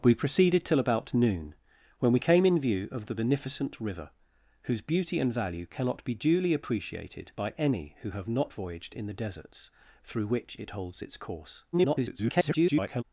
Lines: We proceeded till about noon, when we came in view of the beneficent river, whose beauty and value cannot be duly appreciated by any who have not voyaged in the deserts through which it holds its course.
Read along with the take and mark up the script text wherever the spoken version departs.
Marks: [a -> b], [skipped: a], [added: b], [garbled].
We proceeded till about noon, when we came in view of the beneficent river, whose beauty and value cannot be duly appreciated by any who have not voyaged in the deserts through which it holds its course. [garbled]